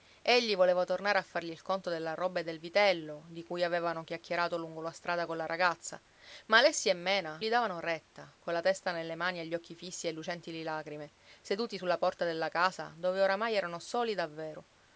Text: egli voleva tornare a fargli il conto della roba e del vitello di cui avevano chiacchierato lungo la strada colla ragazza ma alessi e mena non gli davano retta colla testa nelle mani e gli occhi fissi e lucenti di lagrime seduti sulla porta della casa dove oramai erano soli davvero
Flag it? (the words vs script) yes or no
yes